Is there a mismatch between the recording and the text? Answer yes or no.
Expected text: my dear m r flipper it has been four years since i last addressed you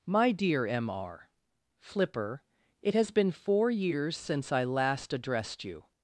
no